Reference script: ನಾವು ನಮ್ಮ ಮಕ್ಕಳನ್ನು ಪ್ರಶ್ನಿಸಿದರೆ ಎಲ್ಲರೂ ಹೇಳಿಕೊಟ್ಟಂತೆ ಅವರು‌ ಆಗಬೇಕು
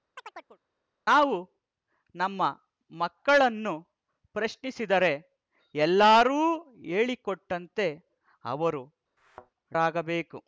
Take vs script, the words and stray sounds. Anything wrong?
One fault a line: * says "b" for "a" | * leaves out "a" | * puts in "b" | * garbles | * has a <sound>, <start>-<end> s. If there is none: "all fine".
* has a chirp, 0.2-0.6 s
* has a thud, 9.2-9.5 s